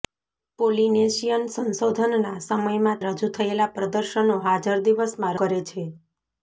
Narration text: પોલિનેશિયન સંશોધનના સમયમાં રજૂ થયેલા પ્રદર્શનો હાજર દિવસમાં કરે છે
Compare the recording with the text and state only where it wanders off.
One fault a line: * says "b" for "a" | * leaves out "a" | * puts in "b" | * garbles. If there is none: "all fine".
all fine